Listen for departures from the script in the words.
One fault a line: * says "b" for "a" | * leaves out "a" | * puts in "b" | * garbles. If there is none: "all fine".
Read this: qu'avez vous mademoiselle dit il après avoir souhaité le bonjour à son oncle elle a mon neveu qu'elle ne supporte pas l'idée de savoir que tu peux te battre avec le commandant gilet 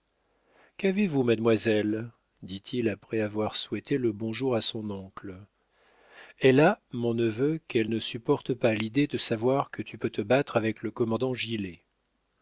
all fine